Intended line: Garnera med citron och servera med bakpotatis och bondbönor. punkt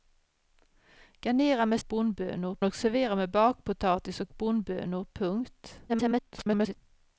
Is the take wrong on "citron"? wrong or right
wrong